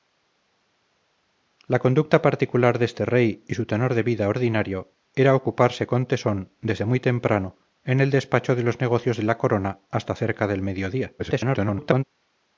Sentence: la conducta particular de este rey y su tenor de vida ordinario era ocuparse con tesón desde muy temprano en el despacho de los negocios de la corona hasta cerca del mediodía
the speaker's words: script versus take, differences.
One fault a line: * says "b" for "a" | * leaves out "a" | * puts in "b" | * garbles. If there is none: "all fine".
* garbles